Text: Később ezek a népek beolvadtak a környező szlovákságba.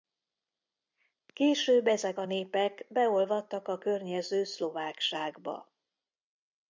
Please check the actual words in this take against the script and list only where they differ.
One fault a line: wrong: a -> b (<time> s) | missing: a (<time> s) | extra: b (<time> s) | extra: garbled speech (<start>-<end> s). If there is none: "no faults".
no faults